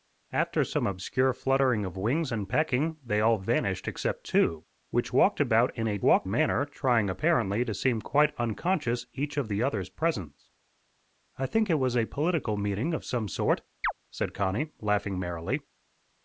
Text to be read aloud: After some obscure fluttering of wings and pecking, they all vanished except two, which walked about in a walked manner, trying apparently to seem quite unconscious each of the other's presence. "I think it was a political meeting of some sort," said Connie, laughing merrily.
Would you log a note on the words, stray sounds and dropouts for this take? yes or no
yes